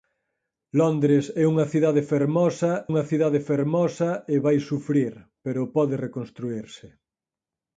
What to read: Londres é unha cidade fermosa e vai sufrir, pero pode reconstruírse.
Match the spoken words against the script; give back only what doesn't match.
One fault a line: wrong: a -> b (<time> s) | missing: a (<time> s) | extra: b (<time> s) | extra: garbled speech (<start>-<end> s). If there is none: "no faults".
extra: unha cidade fermosa (2.9 s)